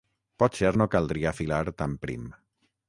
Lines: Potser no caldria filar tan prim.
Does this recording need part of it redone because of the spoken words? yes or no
no